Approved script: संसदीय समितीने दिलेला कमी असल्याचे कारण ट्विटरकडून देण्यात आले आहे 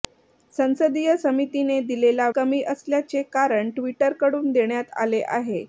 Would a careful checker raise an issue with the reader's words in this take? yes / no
no